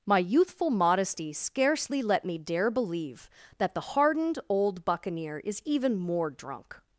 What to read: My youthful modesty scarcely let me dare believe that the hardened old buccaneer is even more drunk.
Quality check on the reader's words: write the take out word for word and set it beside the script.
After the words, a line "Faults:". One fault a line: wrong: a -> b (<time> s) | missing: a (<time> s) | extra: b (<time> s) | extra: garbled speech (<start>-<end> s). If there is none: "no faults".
My youthful modesty scarcely let me dare believe that the hardened old buccaneer is even more drunk.
Faults:
no faults